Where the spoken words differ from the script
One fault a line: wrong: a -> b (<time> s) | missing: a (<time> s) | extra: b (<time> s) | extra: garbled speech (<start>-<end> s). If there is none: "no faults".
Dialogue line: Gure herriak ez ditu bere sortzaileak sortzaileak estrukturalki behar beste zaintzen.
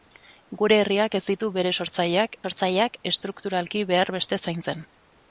no faults